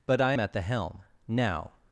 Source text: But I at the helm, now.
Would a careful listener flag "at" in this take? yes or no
no